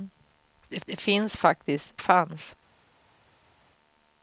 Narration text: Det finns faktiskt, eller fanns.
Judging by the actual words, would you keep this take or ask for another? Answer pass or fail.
fail